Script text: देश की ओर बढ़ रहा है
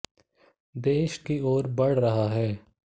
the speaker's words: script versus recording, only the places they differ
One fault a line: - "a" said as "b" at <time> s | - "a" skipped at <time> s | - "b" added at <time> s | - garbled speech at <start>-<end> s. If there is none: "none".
none